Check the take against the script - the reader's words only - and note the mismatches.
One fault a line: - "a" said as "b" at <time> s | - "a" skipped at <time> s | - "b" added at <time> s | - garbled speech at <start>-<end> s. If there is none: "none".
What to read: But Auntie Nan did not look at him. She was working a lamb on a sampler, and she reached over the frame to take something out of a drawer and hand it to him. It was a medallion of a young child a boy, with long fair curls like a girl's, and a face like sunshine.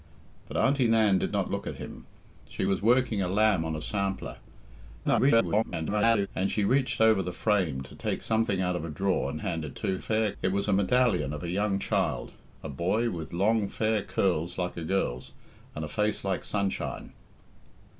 - garbled speech at 5.0-6.3 s
- "him" said as "fair" at 10.0 s